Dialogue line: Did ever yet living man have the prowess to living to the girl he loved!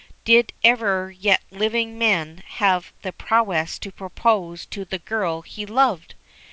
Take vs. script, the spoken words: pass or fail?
fail